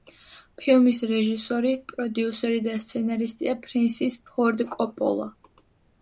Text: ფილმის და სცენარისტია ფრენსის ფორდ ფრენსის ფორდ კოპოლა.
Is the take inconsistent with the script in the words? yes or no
yes